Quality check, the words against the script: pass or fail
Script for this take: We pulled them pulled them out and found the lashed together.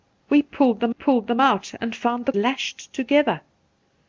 pass